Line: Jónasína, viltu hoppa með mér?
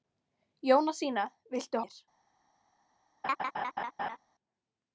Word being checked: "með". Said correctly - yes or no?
no